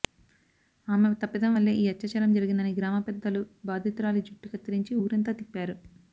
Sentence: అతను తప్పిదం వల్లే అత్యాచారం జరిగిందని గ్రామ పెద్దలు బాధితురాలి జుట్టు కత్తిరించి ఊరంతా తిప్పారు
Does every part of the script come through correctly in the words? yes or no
no